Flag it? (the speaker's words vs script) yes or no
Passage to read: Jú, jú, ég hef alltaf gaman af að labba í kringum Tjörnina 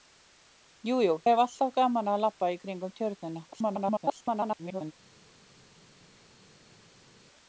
yes